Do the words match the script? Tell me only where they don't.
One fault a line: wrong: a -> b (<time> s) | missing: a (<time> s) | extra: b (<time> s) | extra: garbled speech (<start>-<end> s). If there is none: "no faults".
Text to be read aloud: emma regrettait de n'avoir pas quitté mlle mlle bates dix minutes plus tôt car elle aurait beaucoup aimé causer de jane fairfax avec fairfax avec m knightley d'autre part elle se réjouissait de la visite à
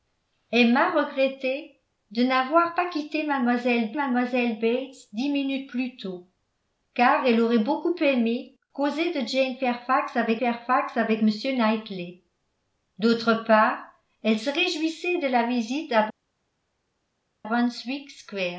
no faults